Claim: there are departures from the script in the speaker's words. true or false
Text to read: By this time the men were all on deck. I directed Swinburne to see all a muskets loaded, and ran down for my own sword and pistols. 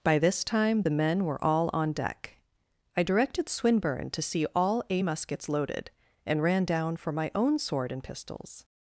false